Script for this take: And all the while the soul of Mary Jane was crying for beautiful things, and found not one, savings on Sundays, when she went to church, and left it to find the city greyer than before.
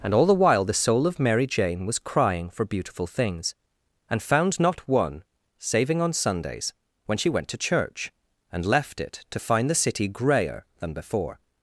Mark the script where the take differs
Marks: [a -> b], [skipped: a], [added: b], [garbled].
And all the while the soul of Mary Jane was crying for beautiful things, and found not one, [savings -> saving] on Sundays, when she went to church, and left it to find the city greyer than before.